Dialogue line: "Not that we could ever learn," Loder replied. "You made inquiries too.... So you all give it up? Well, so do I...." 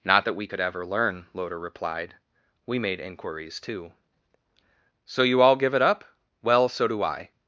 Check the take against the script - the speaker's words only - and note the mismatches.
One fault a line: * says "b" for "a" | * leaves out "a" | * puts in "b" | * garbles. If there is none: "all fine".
* says "We" for "You"